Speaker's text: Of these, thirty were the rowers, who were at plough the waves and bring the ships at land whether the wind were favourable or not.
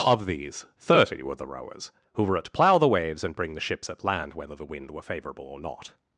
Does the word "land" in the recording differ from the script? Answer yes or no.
no